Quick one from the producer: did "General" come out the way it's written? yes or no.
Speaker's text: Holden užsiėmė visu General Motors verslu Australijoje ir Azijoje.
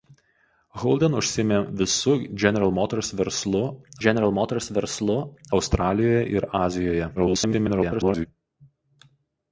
yes